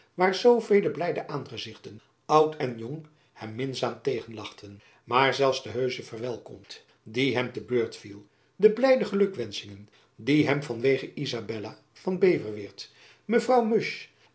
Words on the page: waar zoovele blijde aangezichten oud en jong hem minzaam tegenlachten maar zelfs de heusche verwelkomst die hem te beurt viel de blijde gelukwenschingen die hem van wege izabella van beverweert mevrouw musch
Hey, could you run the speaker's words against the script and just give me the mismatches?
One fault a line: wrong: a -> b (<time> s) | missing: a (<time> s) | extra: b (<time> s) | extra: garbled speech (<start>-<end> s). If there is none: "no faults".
no faults